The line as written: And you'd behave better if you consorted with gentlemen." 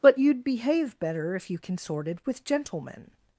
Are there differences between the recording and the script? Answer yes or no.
yes